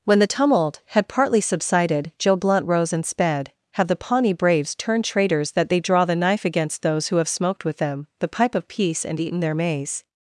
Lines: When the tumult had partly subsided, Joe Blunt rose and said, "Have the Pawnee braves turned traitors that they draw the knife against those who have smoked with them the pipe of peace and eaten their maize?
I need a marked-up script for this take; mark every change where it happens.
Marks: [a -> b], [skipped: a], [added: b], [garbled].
When the tumult had partly subsided, Joe Blunt rose and [said, -> sped] "Have the Pawnee braves turned traitors that they draw the knife against those who have smoked with them the pipe of peace and eaten their maize?